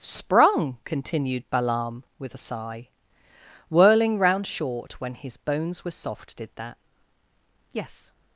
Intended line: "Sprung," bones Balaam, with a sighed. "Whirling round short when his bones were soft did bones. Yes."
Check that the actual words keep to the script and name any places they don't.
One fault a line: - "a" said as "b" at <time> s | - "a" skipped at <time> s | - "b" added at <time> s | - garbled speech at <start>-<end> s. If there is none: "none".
- "bones" said as "continued" at 0.8 s
- "sighed" said as "sigh" at 2.4 s
- "bones" said as "that" at 6.5 s